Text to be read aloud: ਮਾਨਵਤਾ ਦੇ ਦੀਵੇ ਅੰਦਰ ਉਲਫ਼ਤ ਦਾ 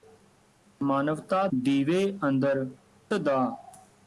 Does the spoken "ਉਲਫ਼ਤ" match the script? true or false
false